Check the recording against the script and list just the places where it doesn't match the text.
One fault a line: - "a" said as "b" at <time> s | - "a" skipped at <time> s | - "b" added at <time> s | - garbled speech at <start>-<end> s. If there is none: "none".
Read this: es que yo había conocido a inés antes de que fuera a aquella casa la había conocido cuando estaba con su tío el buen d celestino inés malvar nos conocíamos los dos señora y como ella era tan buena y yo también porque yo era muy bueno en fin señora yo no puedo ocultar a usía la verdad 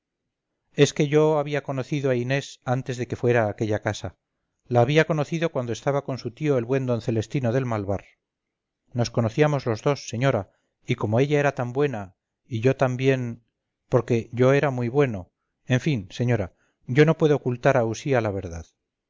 - "inés" said as "del" at 7.5 s